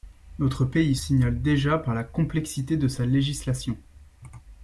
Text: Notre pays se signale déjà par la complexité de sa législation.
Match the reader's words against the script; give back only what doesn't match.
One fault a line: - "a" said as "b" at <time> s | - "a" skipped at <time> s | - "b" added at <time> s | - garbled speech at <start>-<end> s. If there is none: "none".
- "se" skipped at 0.9 s